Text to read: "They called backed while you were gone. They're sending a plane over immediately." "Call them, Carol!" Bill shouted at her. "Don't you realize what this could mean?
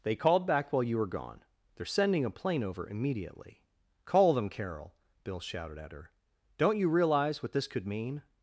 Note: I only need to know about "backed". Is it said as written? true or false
false